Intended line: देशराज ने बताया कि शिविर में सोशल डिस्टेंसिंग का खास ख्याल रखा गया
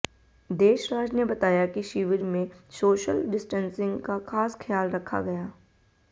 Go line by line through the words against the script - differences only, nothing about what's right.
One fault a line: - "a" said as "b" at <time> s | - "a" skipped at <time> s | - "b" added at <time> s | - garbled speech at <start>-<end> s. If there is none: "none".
none